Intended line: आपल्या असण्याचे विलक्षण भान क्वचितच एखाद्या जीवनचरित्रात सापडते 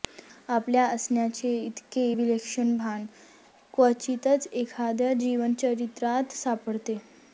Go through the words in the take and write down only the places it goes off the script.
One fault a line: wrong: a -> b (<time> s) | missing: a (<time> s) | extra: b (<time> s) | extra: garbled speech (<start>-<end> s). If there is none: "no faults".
extra: इतके (1.6 s)